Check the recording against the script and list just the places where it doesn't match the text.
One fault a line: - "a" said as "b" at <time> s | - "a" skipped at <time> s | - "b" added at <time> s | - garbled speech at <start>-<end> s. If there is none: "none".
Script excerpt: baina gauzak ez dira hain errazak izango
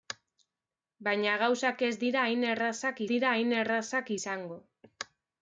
- "dira hain errazak" added at 3.2 s